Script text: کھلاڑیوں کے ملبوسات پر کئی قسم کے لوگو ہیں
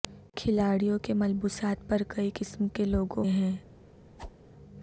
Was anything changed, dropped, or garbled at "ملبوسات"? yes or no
no